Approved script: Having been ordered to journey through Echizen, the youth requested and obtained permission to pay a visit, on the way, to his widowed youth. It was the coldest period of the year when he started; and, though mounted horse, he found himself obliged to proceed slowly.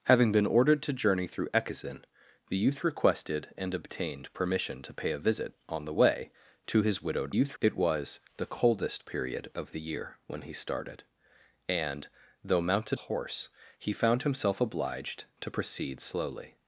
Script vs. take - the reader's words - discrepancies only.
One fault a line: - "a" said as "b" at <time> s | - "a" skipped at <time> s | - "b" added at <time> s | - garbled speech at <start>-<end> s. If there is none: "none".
none